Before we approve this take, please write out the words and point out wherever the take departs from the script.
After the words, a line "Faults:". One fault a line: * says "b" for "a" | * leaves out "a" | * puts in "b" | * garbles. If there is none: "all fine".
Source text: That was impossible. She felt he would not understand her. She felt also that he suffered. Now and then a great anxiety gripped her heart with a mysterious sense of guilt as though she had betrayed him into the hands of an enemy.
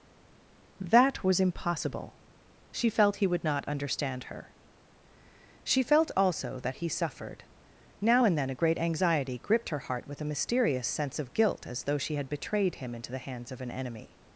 That was impossible. She felt he would not understand her. She felt also that he suffered. Now and then a great anxiety gripped her heart with a mysterious sense of guilt as though she had betrayed him into the hands of an enemy.
Faults:
all fine